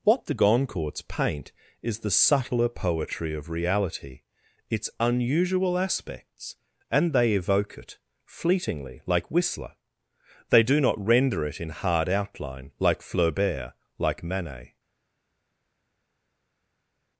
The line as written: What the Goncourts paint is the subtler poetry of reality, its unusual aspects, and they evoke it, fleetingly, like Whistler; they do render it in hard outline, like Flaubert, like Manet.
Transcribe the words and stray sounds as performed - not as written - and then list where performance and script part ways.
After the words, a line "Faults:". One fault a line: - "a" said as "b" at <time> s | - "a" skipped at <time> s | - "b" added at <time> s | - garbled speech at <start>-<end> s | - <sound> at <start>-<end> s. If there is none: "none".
What the Goncourts paint is the subtler poetry of reality, its unusual aspects, and they evoke it, fleetingly, like Whistler; they do not render it in hard outline, like Flaubert, like Manet.
Faults:
- "not" added at 10.8 s